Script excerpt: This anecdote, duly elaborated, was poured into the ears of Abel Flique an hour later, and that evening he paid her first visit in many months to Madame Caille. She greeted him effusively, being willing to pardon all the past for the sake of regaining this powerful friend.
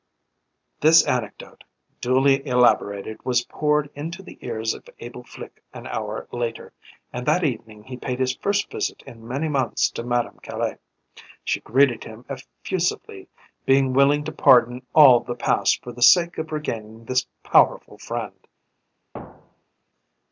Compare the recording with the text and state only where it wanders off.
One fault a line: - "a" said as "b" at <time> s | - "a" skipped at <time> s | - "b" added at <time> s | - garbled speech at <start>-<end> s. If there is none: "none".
- "her" said as "his" at 8.2 s